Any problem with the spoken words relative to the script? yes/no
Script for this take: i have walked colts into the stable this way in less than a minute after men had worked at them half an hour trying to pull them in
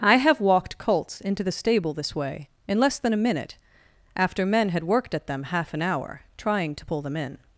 no